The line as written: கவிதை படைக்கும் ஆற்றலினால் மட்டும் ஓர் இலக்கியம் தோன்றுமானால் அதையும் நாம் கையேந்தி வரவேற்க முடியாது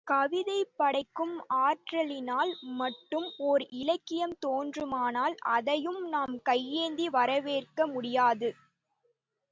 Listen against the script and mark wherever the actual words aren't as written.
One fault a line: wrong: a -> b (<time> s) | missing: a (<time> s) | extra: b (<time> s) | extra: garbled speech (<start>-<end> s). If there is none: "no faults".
no faults